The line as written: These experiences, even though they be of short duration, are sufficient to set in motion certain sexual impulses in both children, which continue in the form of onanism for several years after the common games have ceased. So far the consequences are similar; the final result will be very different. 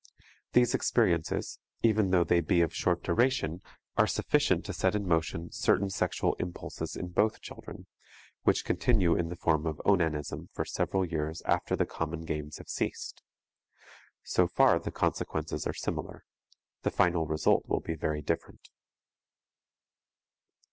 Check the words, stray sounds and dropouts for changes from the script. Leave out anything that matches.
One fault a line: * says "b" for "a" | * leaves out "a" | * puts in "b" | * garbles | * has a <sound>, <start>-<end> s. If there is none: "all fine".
all fine